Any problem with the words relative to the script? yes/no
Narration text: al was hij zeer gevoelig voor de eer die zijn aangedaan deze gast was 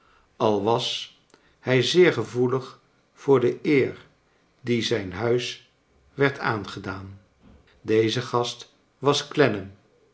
yes